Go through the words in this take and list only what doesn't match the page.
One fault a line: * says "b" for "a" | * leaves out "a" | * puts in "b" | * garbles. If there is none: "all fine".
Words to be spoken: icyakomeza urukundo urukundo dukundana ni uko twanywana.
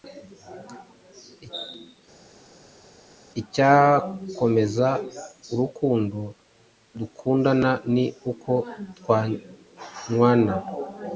* leaves out "urukundo"